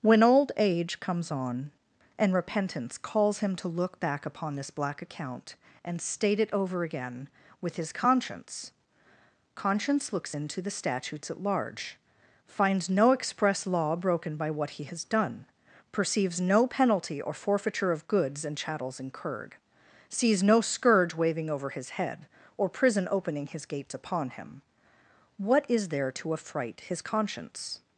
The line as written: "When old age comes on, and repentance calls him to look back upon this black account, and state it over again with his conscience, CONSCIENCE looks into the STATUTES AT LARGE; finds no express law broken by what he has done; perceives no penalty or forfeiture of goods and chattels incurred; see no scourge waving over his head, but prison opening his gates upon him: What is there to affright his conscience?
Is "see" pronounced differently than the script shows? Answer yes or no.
yes